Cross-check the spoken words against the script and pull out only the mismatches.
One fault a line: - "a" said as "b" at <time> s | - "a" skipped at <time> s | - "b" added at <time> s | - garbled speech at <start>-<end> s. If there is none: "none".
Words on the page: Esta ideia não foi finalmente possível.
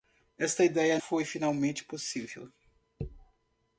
- "não" skipped at 1.0 s